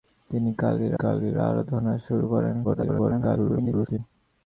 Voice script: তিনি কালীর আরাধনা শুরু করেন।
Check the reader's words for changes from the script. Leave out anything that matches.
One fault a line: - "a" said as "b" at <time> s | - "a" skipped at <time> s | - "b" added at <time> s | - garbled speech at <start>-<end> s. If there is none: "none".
- "কালীর" added at 0.9 s
- garbled speech at 2.6-4.0 s